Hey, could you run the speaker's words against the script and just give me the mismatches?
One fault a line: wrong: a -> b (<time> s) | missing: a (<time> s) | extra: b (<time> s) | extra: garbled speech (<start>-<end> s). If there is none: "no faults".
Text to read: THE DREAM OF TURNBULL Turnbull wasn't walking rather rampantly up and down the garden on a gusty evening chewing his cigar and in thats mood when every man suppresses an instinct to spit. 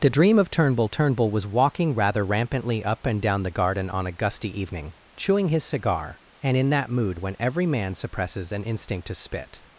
wrong: wasn't -> was (1.3 s)
wrong: thats -> that (6.7 s)